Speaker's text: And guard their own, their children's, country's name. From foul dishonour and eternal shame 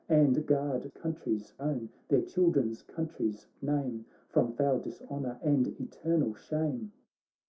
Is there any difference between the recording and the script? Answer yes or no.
yes